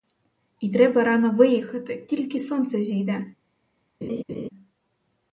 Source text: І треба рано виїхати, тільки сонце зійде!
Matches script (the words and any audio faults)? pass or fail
fail